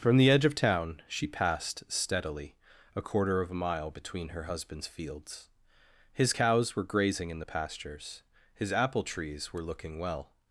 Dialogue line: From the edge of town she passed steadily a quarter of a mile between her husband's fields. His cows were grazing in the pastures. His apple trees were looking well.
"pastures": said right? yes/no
yes